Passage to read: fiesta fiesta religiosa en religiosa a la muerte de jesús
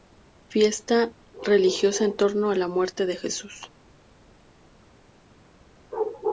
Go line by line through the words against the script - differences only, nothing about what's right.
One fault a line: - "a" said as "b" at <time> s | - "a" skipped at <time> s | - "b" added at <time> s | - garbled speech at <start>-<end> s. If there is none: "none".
- "fiesta" skipped at 1.1 s
- "religiosa" said as "torno" at 2.1 s